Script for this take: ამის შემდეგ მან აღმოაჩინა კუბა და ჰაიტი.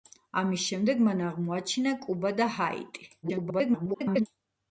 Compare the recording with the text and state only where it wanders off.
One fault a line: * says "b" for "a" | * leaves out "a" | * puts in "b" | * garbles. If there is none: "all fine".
* garbles